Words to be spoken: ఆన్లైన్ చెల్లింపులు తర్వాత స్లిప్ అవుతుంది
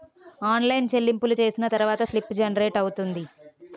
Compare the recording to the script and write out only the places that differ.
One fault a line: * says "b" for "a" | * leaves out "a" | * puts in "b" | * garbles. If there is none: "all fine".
* puts in "చేసిన"
* puts in "జనరేట్"